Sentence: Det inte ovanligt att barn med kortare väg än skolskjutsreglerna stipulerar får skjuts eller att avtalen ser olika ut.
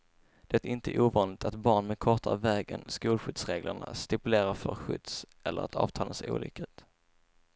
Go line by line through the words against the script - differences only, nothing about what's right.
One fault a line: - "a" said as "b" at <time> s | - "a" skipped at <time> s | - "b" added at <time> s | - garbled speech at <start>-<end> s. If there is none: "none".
none